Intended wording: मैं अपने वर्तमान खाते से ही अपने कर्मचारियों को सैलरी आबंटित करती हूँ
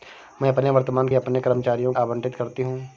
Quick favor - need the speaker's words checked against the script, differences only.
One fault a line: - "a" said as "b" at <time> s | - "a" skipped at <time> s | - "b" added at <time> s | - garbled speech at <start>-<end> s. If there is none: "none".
- "खाते से ही" skipped at 1.1 s
- "को सैलरी" skipped at 1.9 s